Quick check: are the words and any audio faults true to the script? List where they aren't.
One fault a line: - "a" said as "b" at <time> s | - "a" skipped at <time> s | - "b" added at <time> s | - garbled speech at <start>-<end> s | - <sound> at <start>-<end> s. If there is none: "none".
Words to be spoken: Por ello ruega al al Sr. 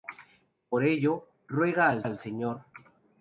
none